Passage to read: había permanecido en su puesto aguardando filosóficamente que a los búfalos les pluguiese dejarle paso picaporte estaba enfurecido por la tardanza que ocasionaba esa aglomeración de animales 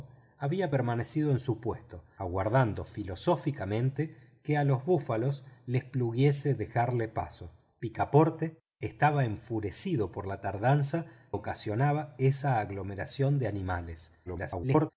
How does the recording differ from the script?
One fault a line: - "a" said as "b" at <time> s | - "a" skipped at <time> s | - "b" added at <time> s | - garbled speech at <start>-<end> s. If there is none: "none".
- "que" skipped at 11.1 s
- garbled speech at 14.3-14.9 s